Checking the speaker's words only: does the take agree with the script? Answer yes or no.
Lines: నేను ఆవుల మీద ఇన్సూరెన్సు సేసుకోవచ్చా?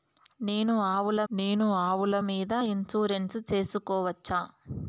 no